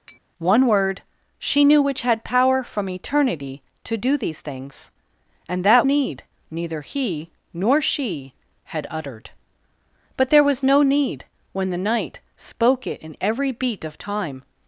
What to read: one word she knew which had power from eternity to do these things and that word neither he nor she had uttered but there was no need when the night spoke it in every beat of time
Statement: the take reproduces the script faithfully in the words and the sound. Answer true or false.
false